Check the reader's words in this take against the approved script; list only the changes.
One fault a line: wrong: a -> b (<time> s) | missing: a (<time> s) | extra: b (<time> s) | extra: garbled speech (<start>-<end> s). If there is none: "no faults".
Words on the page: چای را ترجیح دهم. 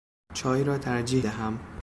no faults